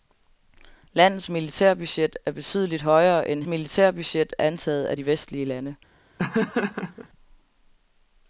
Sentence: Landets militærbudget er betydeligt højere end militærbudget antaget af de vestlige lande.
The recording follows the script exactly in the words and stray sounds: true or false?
false